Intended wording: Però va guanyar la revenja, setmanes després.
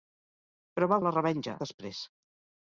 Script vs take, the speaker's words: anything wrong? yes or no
yes